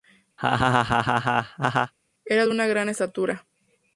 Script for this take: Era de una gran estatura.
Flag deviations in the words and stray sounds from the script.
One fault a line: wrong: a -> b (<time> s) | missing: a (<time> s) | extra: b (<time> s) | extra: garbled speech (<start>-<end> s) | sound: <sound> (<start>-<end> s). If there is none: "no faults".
sound: laugh (0.4-1.9 s)